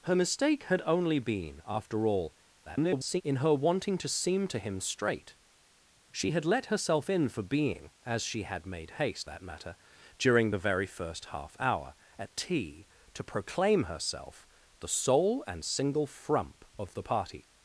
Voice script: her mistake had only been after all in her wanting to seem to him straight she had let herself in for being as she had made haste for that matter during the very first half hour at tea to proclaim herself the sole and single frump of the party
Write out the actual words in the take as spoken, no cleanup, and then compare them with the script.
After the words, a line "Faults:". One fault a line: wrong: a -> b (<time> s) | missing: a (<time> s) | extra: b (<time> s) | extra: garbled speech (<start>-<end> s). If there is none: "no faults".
her mistake had only been after all [garbled] in her wanting to seem to him straight she had let herself in for being as she had made haste that matter during the very first half hour at tea to proclaim herself the sole and single frump of the party
Faults:
extra: garbled speech (2.6-3.2 s)
missing: for (9.3 s)